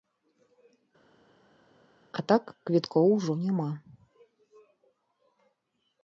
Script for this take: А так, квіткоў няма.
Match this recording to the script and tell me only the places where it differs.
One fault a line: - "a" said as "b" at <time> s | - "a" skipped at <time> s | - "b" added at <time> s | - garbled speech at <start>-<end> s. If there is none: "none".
- "ужо" added at 3.2 s